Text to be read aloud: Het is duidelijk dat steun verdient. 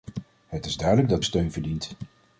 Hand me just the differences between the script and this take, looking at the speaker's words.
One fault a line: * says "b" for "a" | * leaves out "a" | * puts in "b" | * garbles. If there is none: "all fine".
all fine